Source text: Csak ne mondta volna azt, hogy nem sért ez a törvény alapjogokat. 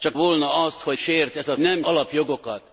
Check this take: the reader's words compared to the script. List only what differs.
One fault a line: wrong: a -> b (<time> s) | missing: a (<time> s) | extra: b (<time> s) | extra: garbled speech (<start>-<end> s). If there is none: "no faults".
missing: ne mondta (0.2 s)
missing: nem (1.0 s)
wrong: törvény -> nem (1.6 s)